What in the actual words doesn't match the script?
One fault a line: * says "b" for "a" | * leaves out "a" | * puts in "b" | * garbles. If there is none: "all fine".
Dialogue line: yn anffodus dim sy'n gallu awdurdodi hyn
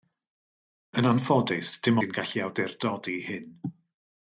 all fine